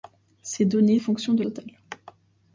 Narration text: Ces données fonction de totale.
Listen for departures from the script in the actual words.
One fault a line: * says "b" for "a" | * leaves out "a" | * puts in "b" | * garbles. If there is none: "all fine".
all fine